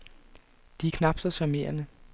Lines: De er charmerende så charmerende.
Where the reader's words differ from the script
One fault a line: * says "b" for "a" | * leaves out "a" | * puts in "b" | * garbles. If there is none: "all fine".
* says "knap" for "charmerende"